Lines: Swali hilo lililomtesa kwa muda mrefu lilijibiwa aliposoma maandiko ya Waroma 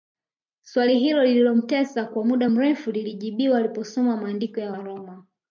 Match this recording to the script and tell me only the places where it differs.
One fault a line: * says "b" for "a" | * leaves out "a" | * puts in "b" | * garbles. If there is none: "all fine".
all fine